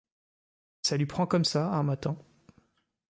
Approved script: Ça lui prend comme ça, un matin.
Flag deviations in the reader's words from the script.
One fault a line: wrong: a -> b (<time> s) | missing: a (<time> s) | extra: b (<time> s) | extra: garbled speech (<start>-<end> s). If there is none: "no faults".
no faults